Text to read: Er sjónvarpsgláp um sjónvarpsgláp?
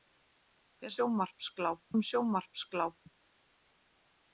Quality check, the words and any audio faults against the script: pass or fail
pass